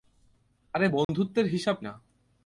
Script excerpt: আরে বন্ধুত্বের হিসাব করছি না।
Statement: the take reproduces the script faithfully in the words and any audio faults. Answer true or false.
false